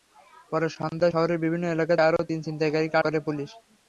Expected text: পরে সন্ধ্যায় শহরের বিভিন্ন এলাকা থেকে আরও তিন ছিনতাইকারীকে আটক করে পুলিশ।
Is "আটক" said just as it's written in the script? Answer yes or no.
no